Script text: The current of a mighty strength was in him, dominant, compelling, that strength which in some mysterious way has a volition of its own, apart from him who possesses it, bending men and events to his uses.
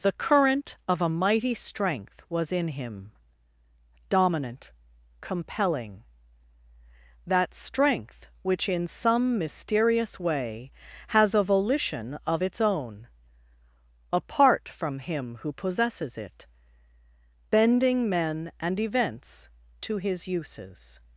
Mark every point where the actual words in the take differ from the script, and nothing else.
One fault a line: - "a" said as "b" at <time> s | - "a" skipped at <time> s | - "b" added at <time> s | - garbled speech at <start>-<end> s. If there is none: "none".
none